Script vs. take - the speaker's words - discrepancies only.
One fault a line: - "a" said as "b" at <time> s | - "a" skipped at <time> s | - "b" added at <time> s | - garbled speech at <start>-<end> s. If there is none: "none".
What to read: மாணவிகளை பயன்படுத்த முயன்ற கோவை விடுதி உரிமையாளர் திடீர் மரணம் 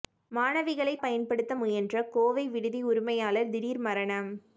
none